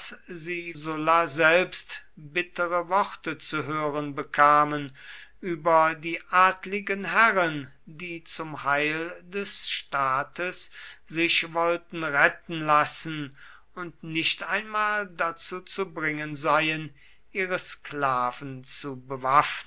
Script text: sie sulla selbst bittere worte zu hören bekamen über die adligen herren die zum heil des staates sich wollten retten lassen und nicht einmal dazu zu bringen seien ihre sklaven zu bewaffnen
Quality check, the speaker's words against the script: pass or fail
pass